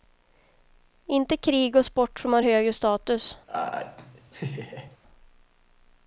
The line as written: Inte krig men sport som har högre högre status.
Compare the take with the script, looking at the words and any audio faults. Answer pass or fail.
fail